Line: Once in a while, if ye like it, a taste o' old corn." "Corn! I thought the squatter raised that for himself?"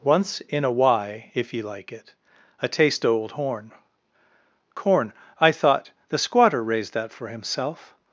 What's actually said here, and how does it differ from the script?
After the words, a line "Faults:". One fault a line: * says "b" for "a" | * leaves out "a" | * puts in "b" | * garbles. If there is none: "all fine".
Once in a why, if ye like it, a taste o' old horn." "Corn! I thought the squatter raised that for himself?"
Faults:
* says "why" for "while"
* says "horn" for "corn"